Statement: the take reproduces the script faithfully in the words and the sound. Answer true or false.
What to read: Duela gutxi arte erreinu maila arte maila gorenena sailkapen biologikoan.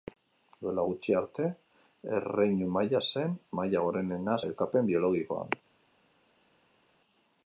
false